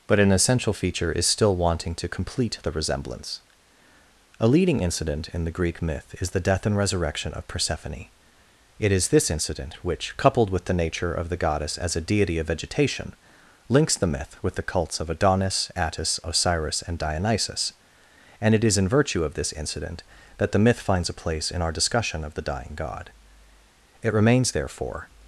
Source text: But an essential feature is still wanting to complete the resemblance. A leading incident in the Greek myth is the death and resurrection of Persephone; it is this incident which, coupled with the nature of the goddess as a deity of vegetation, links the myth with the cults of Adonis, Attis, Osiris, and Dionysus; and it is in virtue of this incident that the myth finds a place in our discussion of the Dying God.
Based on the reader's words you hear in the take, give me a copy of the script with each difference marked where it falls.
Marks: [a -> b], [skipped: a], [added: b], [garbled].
But an essential feature is still wanting to complete the resemblance. A leading incident in the Greek myth is the death and resurrection of Persephone; it is this incident which, coupled with the nature of the goddess as a deity of vegetation, links the myth with the cults of Adonis, Attis, Osiris, and Dionysus; and it is in virtue of this incident that the myth finds a place in our discussion of the Dying God. [added: It remains therefore]